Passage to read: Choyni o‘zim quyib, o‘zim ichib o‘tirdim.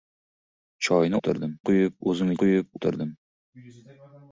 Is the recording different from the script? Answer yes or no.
yes